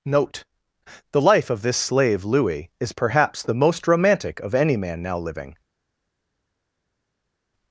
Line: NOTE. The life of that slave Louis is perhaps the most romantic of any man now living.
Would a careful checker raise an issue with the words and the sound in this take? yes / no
yes